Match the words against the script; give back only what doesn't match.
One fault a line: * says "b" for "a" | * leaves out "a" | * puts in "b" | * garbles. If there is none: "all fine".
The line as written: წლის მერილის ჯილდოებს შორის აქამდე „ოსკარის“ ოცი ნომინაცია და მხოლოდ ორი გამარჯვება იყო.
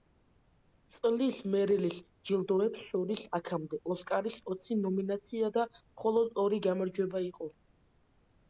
all fine